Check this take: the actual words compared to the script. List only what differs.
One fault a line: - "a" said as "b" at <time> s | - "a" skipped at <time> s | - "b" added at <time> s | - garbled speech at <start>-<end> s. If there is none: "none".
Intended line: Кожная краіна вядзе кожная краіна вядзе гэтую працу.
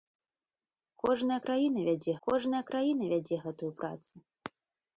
none